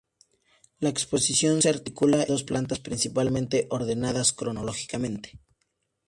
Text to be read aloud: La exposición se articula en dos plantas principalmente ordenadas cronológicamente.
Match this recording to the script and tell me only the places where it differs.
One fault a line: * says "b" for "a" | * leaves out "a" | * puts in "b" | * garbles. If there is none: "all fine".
* leaves out "en"